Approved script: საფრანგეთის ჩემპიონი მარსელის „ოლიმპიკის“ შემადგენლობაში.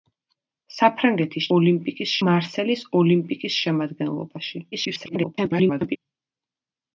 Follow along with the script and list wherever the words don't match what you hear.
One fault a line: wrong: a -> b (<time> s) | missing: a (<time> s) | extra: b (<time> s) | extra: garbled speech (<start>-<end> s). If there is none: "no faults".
wrong: ჩემპიონი -> ოლიმპიკის (1.6 s)
extra: garbled speech (4.7-6.0 s)